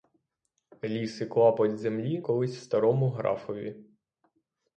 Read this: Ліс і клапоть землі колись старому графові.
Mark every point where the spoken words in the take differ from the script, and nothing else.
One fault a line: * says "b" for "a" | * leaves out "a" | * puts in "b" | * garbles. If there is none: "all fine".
all fine